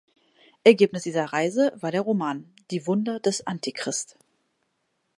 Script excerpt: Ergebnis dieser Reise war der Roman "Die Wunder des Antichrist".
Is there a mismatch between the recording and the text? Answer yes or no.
no